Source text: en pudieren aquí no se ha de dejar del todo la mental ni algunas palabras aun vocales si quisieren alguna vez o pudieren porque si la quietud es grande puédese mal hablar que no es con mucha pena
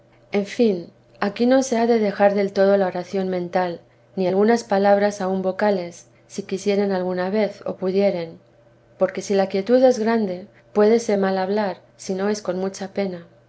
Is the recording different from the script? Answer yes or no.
yes